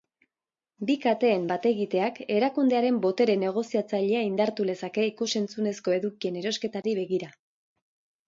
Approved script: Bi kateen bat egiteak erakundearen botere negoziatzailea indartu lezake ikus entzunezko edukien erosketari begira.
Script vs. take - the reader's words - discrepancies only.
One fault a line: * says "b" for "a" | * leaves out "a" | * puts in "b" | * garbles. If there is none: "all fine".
all fine